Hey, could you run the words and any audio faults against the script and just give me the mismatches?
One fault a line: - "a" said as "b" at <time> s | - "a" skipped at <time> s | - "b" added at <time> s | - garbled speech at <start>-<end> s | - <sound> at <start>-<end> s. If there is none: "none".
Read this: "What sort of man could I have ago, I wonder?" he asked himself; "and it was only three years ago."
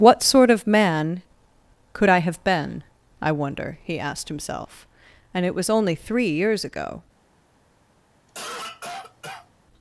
- "ago" said as "been" at 2.4 s
- cough at 8.3-9.5 s